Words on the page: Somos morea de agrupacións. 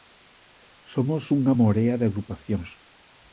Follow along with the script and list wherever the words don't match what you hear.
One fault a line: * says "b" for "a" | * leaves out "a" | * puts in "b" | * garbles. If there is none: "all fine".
* puts in "unha"